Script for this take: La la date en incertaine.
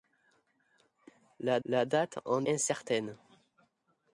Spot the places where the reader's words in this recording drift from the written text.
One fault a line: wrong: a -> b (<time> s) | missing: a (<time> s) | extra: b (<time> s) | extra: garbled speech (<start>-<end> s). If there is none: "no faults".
no faults